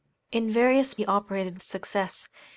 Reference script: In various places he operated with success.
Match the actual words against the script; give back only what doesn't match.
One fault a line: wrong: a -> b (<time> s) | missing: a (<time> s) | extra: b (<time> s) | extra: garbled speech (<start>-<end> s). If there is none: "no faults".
missing: places (0.9 s)
missing: with (1.6 s)